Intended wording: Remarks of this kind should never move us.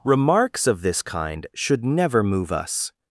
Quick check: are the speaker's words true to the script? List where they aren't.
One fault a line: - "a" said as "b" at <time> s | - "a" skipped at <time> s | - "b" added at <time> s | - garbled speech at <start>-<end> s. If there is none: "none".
none